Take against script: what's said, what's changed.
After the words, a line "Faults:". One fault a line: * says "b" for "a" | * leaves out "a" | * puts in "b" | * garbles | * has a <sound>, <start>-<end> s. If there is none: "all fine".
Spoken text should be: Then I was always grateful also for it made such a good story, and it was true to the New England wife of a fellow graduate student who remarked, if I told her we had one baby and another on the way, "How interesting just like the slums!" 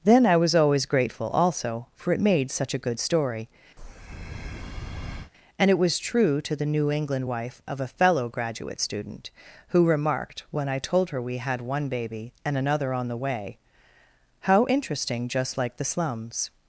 Then I was always grateful also for it made such a good story, and it was true to the New England wife of a fellow graduate student who remarked, when I told her we had one baby and another on the way, "How interesting just like the slums!"
Faults:
* has a breath, 3.8-5.3 s
* says "when" for "if"